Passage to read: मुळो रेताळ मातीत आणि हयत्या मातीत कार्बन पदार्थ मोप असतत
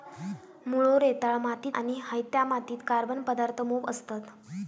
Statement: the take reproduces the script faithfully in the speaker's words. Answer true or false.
true